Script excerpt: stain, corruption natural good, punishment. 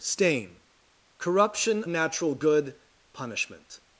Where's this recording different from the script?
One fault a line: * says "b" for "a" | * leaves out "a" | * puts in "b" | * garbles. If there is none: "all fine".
all fine